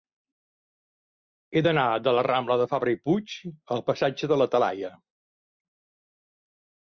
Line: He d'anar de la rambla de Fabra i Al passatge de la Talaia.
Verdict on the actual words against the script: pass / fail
fail